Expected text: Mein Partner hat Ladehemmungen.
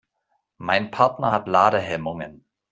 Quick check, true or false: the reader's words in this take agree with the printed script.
true